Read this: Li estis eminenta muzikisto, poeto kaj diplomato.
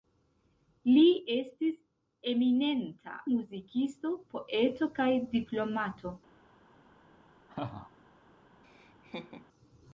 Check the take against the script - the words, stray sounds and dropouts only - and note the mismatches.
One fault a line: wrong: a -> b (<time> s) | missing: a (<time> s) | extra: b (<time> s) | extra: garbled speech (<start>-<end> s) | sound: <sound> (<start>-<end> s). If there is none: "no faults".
sound: laugh (7.5-7.9 s)
sound: laugh (8.6-9.5 s)